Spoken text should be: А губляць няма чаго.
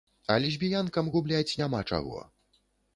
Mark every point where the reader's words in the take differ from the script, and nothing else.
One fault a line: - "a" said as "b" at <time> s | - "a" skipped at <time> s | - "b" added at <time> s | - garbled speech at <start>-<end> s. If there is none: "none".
- "лесбіянкам" added at 0.5 s